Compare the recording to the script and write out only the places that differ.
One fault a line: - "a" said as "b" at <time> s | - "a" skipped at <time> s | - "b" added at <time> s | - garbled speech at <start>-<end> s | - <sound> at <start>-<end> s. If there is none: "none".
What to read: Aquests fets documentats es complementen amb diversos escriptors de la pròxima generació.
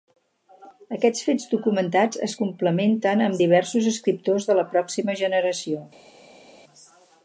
none